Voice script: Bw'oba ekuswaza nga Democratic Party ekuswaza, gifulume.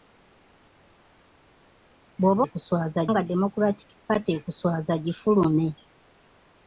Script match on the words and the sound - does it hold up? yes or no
yes